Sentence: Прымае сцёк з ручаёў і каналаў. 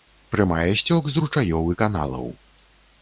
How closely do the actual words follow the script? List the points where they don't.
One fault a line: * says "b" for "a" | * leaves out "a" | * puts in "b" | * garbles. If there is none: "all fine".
all fine